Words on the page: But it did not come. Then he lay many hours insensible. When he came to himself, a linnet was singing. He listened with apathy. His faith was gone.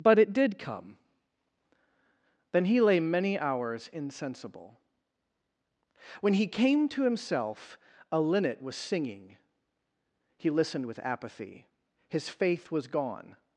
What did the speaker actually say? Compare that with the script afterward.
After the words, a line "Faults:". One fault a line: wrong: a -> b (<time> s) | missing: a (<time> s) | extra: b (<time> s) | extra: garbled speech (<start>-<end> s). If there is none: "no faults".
But it did come. Then he lay many hours insensible. When he came to himself, a linnet was singing. He listened with apathy. His faith was gone.
Faults:
missing: not (0.6 s)